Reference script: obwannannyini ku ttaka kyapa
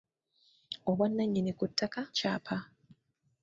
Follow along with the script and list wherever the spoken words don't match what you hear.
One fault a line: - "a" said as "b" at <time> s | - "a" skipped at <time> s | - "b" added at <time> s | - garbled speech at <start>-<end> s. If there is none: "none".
none